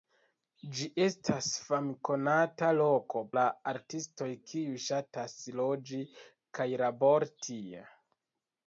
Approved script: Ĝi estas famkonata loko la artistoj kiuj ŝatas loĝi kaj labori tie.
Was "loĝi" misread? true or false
false